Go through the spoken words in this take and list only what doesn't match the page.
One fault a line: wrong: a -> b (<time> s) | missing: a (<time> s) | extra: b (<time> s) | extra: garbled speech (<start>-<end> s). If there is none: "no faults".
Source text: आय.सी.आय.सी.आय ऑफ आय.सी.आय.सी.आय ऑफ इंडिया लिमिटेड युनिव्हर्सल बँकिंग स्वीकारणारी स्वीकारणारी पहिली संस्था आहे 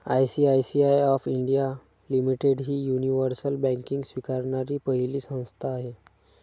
missing: आय.सी.आय.सी.आय ऑफ (1.3 s)
extra: ही (2.6 s)
missing: स्वीकारणारी (4.8 s)